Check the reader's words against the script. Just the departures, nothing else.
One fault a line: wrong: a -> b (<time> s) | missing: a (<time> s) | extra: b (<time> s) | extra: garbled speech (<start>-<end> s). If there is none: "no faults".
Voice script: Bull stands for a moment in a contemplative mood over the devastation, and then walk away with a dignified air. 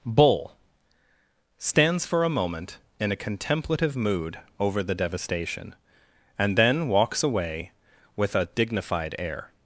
wrong: walk -> walks (6.9 s)